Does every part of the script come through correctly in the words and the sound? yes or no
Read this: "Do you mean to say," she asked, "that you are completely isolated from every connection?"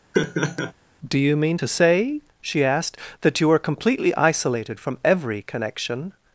no